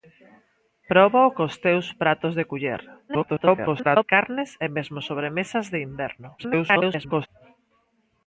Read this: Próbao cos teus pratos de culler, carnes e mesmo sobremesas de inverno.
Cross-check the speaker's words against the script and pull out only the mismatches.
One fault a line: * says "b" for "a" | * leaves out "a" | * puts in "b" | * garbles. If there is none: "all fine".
* garbles
* garbles